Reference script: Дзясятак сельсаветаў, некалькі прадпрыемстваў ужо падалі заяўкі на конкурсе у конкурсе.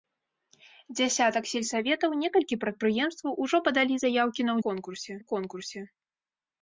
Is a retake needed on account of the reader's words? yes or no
no